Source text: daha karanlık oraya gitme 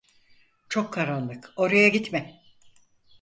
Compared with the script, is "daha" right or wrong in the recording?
wrong